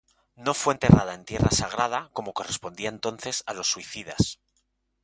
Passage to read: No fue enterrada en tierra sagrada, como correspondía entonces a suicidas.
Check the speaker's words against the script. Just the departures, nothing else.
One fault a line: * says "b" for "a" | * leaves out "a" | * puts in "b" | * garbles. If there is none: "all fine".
* puts in "los"